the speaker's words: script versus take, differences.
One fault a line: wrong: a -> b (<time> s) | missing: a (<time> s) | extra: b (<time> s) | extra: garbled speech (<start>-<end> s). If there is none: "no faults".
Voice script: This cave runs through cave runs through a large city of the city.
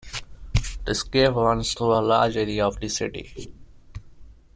missing: cave runs through (1.9 s)
wrong: city -> area (2.4 s)